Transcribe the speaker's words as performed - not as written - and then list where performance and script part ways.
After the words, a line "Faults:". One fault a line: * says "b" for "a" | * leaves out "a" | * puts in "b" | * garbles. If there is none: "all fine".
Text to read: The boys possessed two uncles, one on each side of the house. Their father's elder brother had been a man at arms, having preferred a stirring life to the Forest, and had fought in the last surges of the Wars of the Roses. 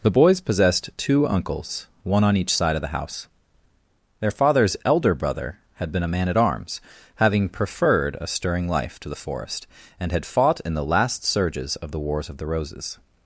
The boys possessed two uncles, one on each side of the house. Their father's elder brother had been a man at arms, having preferred a stirring life to the Forest, and had fought in the last surges of the Wars of the Roses.
Faults:
all fine